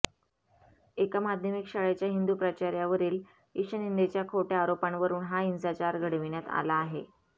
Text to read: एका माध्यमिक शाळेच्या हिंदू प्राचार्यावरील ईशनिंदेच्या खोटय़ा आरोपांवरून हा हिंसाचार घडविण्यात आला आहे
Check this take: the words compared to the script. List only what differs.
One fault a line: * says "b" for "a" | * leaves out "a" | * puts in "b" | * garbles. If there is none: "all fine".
all fine